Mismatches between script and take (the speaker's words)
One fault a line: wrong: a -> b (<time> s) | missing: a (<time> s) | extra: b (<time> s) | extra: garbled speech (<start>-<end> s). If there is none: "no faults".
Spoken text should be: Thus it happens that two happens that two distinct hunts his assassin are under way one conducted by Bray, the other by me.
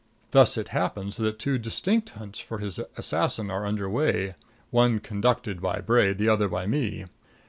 missing: happens that two (1.6 s)
extra: for (2.4 s)